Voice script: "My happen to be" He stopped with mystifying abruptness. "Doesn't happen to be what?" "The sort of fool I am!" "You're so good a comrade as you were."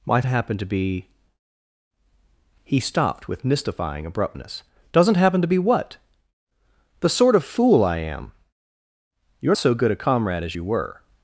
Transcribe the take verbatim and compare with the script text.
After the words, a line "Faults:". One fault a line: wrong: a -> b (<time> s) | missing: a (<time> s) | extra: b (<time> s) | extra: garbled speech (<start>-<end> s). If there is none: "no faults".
"My happen to be" He stopped with mystifying abruptness. "Doesn't happen to be what?" "The sort of fool I am!" "You're so good a comrade as you were."
Faults:
no faults